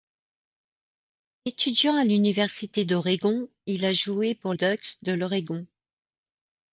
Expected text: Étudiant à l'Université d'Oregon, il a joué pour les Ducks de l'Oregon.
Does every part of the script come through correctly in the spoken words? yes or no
no